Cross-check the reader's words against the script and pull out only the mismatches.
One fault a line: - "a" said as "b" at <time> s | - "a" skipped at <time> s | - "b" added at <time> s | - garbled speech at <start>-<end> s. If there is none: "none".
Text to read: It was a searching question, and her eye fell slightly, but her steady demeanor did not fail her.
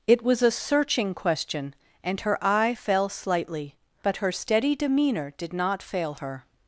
none